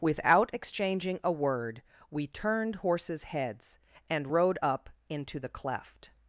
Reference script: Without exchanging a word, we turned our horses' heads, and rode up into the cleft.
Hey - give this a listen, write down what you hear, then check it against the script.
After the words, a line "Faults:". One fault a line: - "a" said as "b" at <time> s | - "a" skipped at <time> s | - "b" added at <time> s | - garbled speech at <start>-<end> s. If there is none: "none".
Without exchanging a word, we turned horses' heads, and rode up into the cleft.
Faults:
- "our" skipped at 2.8 s